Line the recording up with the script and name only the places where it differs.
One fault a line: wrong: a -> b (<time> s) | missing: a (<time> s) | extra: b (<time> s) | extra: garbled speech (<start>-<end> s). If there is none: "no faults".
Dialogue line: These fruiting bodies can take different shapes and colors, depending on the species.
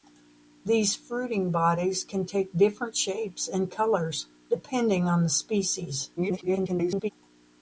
extra: garbled speech (6.2-7.1 s)